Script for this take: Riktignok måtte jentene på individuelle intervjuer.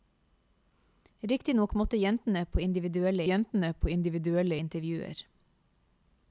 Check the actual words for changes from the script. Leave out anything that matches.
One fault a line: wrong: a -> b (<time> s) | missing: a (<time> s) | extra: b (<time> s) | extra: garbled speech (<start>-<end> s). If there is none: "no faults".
extra: jentene på individuelle (3.2 s)